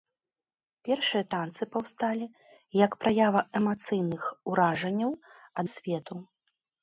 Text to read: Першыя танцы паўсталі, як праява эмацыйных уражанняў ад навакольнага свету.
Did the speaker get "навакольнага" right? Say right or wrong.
wrong